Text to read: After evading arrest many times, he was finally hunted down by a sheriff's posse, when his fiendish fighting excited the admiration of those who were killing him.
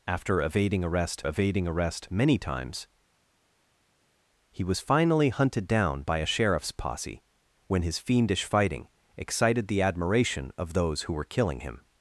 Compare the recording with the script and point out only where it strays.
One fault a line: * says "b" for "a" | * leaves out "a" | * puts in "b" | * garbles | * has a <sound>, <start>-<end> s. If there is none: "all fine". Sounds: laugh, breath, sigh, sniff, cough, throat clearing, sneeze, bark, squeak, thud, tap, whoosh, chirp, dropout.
* puts in "evading arrest"